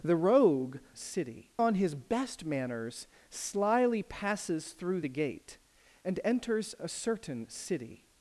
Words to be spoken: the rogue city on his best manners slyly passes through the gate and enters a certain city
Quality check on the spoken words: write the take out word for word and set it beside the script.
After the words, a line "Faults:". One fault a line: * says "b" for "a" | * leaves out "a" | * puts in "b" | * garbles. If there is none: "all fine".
the rogue city on his best manners slyly passes through the gate and enters a certain city
Faults:
all fine